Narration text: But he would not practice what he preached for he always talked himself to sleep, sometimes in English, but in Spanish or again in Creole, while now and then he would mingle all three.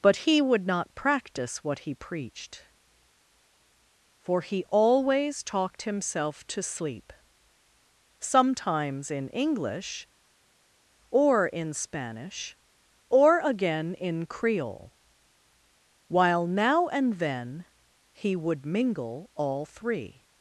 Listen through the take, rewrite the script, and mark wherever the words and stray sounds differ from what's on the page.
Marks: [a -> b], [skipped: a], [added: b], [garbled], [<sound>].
But he would not practice what he preached for he always talked himself to sleep, sometimes in English, [but -> or] in Spanish or again in Creole, while now and then he would mingle all three.